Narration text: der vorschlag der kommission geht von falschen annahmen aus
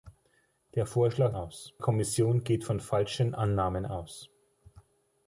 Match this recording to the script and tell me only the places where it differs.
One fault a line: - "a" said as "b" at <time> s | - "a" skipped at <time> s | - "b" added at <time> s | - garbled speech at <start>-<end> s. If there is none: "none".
- "der" said as "aus" at 1.3 s